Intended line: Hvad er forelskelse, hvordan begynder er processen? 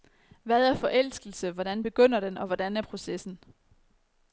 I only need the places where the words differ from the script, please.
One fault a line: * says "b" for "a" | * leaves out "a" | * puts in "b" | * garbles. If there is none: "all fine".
* puts in "den og hvordan"